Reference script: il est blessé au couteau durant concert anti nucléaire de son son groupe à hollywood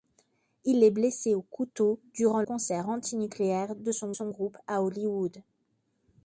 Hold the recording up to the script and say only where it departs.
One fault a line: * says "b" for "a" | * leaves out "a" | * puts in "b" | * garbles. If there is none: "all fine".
all fine